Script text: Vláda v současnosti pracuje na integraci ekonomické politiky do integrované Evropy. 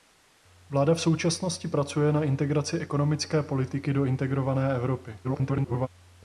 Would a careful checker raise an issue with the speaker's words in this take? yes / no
yes